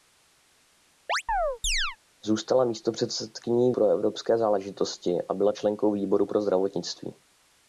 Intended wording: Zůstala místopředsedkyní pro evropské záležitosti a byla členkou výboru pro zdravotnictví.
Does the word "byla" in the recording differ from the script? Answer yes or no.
no